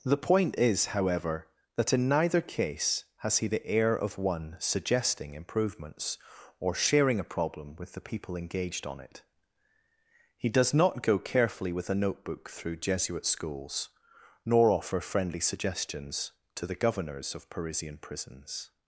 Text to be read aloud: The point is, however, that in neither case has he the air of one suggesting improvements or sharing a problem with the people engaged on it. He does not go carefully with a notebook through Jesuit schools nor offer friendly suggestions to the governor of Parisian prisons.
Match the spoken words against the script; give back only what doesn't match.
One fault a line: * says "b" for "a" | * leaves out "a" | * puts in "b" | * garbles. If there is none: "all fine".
* says "governors" for "governor"